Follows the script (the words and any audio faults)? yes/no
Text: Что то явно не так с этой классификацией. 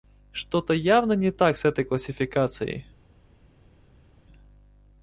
yes